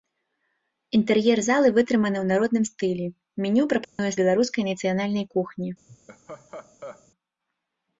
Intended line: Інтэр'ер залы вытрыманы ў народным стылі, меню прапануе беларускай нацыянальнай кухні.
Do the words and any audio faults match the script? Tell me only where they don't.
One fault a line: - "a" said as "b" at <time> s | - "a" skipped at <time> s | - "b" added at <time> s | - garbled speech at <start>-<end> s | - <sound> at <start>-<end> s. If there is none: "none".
- dropout at 3.8-4.0 s
- laugh at 5.9-7.1 s